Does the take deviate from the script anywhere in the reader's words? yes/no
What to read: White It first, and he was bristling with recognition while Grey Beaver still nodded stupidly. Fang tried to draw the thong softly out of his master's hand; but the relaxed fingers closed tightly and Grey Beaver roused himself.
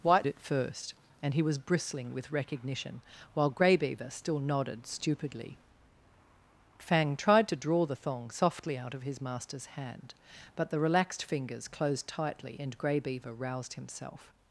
no